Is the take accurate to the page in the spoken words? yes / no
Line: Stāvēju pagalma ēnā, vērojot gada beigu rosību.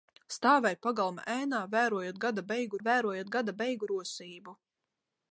no